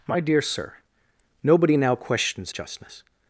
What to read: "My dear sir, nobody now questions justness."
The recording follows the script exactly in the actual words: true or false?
true